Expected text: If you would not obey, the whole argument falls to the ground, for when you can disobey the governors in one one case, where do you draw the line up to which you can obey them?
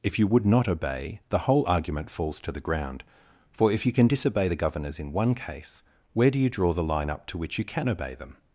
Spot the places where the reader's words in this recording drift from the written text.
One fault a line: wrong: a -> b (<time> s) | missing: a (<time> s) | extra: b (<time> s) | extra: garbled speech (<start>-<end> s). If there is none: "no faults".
wrong: when -> if (3.7 s)
missing: one (5.3 s)